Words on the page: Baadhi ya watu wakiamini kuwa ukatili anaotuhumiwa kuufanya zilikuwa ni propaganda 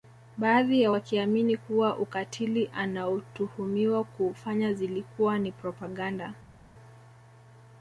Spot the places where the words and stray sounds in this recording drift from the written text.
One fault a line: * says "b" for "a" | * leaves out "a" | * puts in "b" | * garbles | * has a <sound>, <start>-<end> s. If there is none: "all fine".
* leaves out "watu"